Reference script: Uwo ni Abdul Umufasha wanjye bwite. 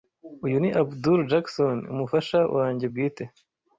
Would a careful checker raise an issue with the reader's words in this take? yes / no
yes